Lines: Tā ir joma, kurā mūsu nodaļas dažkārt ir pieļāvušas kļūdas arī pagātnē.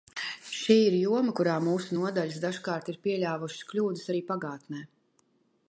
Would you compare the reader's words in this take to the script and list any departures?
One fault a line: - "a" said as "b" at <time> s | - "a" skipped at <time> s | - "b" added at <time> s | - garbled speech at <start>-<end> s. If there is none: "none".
- "Tā" said as "Šī" at 0.6 s